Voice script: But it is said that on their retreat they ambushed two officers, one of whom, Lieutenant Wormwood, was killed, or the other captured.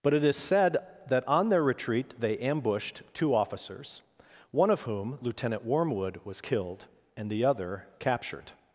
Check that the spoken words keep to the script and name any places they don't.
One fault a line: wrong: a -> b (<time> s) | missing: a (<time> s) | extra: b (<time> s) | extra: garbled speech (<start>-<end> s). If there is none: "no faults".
wrong: or -> and (7.2 s)